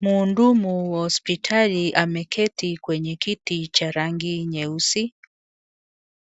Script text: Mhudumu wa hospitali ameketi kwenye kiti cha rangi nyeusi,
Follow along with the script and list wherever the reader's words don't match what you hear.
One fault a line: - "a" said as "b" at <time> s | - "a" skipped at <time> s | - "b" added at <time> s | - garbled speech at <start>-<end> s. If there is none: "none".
none